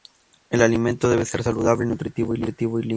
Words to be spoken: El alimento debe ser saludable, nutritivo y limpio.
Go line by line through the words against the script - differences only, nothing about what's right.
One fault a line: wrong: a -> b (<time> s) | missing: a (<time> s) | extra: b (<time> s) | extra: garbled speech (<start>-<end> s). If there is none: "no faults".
no faults